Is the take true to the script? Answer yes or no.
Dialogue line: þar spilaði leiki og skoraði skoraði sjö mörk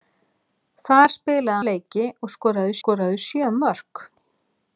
yes